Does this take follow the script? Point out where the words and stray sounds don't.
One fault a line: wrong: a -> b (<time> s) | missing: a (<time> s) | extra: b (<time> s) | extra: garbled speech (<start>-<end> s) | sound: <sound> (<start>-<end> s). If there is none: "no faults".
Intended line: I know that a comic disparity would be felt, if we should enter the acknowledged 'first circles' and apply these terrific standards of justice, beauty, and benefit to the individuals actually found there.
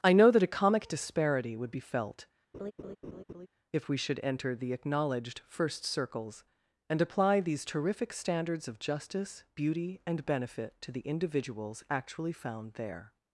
sound: laugh (2.5-3.5 s)